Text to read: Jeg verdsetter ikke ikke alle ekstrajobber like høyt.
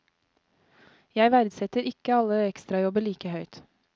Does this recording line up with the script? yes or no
no